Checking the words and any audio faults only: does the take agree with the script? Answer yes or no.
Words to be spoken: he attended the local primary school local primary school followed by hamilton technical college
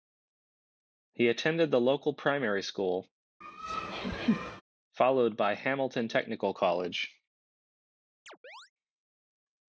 no